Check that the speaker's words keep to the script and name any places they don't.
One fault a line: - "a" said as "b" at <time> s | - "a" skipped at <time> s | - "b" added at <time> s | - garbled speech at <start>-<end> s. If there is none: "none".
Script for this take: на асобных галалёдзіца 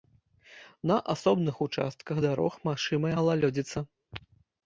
- "участках дарог магчымая" added at 1.6 s